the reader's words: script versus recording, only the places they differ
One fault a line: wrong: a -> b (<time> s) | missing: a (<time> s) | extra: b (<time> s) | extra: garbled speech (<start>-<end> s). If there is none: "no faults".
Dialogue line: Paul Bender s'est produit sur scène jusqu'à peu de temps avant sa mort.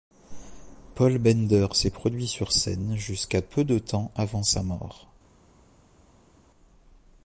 no faults